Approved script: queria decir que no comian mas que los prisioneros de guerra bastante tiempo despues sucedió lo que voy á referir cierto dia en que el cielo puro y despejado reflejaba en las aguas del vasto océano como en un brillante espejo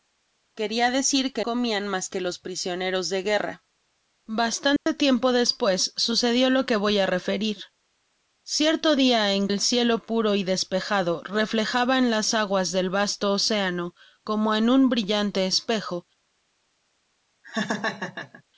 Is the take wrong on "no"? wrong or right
wrong